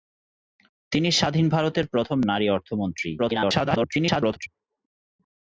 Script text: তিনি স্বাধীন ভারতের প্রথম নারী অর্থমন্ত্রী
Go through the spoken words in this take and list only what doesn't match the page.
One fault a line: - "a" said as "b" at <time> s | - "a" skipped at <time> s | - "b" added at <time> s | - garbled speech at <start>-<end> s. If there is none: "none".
- garbled speech at 3.2-4.5 s